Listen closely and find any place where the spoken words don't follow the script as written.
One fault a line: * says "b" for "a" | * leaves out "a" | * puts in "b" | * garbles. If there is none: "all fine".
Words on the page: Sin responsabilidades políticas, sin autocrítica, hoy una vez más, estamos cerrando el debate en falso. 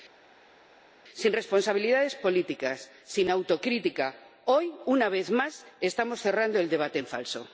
all fine